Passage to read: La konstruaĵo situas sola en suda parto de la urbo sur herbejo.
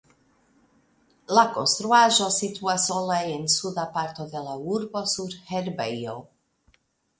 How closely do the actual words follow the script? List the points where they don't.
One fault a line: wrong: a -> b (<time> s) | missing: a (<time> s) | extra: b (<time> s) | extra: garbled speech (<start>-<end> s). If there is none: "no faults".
no faults